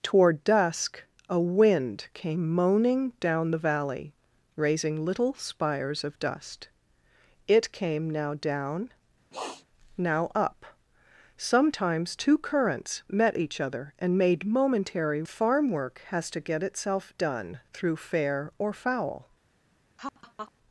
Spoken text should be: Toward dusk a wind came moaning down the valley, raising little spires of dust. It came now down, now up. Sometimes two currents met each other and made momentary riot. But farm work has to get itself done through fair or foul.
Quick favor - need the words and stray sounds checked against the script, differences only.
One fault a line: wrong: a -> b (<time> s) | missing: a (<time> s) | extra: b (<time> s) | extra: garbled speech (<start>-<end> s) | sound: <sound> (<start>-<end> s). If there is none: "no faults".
sound: sniff (9.3-9.6 s)
missing: riot But (15.2 s)
sound: laugh (20.0-20.5 s)